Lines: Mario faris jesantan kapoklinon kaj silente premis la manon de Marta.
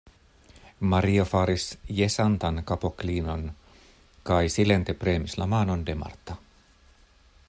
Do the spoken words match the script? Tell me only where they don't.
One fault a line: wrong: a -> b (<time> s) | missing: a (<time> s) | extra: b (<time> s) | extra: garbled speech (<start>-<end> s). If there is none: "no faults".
no faults